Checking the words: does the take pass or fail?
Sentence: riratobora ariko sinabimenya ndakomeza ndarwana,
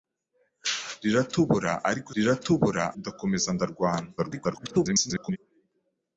fail